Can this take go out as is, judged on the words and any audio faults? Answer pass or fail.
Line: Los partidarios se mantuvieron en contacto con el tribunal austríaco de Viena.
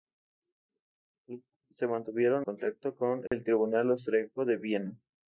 fail